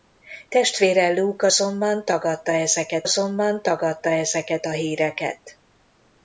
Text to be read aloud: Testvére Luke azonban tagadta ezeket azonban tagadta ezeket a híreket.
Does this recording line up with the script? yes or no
yes